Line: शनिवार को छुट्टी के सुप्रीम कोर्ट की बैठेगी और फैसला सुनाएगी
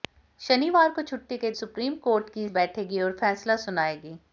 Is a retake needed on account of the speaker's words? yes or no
no